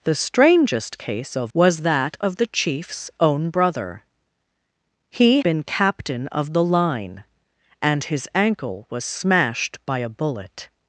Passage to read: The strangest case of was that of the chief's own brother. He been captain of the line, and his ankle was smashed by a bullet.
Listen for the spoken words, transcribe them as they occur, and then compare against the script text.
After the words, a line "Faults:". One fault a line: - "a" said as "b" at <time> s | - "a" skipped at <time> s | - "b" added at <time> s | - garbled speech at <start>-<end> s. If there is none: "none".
The strangest case of was that of the chief's own brother. He been captain of the line, and his ankle was smashed by a bullet.
Faults:
none